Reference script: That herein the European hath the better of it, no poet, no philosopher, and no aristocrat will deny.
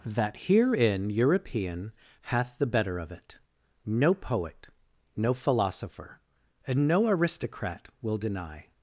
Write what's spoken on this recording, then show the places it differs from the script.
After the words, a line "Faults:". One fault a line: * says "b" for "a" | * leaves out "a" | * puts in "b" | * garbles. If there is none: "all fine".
That herein European hath the better of it, no poet, no philosopher, and no aristocrat will deny.
Faults:
* leaves out "the"